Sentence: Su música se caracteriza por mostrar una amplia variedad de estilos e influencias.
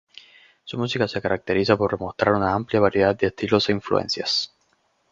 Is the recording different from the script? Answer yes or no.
no